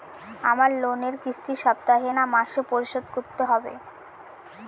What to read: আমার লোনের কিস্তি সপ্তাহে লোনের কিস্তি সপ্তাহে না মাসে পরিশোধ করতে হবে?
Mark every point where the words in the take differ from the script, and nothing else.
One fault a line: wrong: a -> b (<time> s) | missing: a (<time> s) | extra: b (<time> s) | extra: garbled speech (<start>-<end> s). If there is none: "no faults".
missing: লোনের কিস্তি সপ্তাহে (2.1 s)